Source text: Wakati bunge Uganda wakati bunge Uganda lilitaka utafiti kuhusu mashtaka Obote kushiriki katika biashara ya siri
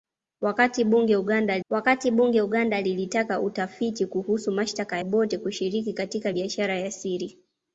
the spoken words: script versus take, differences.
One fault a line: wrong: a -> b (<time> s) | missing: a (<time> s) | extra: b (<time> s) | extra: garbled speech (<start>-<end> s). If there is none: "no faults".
no faults